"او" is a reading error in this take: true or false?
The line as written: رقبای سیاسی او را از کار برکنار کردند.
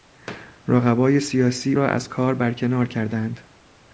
true